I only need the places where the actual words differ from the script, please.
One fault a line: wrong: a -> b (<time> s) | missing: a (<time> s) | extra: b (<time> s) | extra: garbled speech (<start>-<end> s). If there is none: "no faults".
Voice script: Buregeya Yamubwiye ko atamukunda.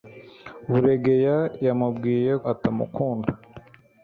missing: ko (2.3 s)